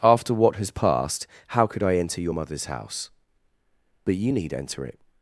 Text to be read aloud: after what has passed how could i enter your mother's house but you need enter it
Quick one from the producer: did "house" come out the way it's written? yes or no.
yes